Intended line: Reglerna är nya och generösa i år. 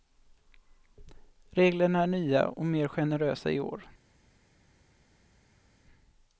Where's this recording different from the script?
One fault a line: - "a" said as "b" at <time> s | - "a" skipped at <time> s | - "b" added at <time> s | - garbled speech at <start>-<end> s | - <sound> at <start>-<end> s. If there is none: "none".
- "mer" added at 2.7 s